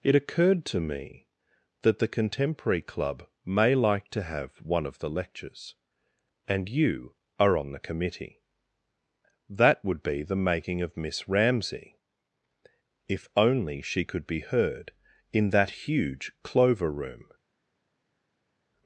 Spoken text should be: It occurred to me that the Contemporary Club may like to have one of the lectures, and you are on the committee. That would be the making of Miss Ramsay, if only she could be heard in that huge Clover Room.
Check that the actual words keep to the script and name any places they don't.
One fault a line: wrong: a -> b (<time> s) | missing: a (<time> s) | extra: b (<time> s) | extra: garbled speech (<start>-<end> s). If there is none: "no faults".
no faults